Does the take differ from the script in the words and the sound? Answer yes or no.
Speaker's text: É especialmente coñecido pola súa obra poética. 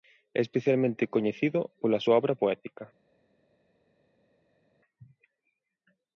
no